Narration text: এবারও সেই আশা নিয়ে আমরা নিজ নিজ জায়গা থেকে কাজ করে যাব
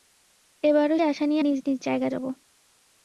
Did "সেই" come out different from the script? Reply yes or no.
yes